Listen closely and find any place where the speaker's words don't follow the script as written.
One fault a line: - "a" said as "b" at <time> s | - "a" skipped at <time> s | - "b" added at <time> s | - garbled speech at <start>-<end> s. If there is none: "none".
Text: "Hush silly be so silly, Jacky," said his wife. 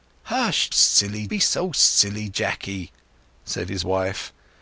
none